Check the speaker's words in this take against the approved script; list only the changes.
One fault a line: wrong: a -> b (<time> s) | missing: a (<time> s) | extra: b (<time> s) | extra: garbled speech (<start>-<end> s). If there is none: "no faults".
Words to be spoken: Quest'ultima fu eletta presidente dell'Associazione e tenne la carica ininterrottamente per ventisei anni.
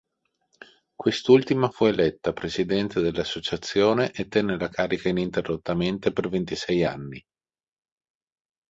no faults